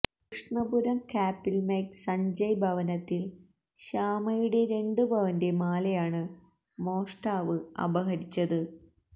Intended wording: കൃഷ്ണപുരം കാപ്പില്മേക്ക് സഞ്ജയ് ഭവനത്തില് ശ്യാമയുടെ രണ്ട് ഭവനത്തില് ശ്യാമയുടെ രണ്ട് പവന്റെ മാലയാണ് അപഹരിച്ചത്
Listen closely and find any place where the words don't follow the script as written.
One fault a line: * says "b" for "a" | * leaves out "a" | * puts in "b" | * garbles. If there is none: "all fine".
* leaves out "ഭവനത്തില് ശ്യാമയുടെ രണ്ട്"
* puts in "മോഷ്ടാവ്"